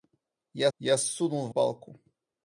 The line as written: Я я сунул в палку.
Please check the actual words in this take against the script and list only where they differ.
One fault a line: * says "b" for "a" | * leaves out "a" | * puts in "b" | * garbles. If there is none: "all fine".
all fine